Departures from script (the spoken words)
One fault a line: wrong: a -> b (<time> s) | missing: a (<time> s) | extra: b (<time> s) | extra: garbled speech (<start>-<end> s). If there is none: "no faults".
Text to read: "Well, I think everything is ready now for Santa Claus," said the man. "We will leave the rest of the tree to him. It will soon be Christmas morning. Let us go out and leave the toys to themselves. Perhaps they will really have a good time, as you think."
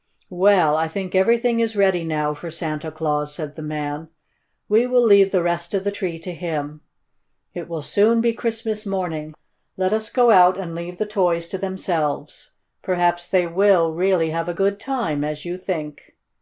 no faults